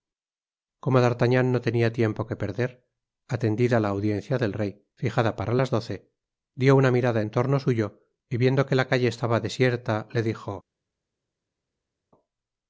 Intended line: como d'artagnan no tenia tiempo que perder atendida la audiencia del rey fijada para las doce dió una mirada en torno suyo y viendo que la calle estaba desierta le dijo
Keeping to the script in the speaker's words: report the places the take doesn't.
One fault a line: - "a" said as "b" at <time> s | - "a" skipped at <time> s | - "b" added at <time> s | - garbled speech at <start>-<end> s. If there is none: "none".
none